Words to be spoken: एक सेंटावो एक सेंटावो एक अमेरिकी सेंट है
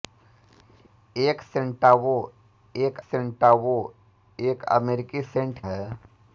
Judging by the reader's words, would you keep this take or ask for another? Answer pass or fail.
pass